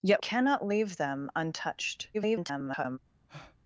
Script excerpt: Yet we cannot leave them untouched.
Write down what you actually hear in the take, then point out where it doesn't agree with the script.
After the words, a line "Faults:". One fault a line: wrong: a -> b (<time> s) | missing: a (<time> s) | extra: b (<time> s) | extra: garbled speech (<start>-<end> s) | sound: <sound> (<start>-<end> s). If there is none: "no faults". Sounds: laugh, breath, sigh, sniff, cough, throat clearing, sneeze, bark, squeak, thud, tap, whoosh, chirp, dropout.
Yet cannot leave them untouched. [garbled]
Faults:
missing: we (0.2 s)
extra: garbled speech (2.1-3.0 s)
sound: breath (3.3-3.6 s)